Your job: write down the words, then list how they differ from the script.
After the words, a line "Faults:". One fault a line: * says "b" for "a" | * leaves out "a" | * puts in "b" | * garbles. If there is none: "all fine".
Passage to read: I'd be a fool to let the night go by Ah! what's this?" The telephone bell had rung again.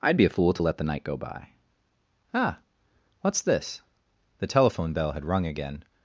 I'd be a fool to let the night go by Ah! what's this?" The telephone bell had rung again.
Faults:
all fine